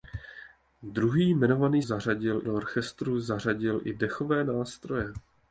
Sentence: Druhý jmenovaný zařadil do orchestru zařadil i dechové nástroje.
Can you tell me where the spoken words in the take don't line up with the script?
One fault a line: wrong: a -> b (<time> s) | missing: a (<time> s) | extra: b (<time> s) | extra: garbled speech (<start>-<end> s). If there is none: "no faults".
no faults